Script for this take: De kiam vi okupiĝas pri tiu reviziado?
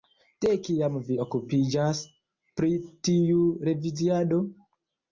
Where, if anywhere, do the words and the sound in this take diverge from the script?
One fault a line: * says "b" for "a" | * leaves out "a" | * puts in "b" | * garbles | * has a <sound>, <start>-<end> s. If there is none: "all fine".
all fine